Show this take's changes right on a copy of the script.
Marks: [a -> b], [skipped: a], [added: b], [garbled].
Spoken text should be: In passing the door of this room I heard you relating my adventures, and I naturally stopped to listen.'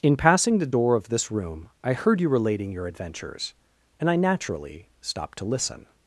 In passing the door of this room I heard you relating [my -> your] adventures, and I naturally stopped to listen.'